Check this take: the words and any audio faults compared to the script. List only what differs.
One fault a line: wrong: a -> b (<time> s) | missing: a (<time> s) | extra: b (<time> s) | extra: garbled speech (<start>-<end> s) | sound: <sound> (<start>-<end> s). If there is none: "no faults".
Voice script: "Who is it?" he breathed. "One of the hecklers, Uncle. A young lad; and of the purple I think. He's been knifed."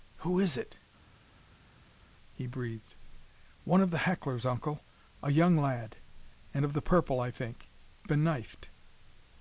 missing: He's (7.7 s)